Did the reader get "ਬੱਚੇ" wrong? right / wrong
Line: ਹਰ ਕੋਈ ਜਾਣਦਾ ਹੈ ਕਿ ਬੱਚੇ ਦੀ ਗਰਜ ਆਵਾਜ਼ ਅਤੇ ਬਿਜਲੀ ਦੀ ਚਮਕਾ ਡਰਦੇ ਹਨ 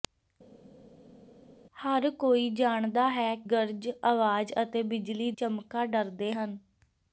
wrong